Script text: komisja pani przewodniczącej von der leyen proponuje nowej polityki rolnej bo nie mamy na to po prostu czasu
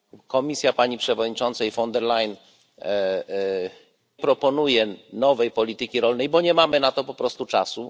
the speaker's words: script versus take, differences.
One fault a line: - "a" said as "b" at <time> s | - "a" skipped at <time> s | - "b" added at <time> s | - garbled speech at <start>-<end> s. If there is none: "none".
none